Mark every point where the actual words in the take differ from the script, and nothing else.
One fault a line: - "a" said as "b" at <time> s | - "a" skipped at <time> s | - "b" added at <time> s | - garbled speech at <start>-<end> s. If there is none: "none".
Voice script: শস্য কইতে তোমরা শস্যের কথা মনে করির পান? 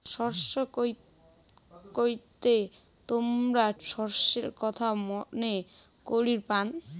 none